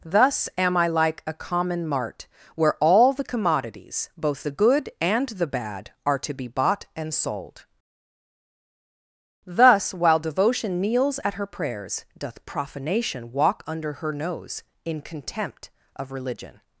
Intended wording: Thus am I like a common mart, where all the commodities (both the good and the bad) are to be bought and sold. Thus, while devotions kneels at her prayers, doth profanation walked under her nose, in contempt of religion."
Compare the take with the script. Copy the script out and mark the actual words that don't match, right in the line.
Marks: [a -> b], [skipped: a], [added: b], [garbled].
Thus am I like a common mart, where all the commodities (both the good and the bad) are to be bought and sold. Thus, while [devotions -> devotion] kneels at her prayers, doth profanation [walked -> walk] under her nose, in contempt of religion."